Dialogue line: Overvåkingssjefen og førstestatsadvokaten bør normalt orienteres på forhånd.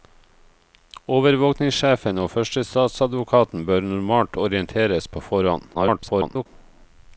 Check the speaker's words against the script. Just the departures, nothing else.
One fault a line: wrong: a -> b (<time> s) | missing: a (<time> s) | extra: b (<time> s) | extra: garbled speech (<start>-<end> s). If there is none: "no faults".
extra: garbled speech (5.7-6.5 s)